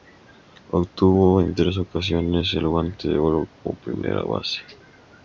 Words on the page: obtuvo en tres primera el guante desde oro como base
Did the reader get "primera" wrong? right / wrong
wrong